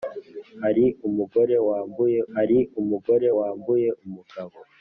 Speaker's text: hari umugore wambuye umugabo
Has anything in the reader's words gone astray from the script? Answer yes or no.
yes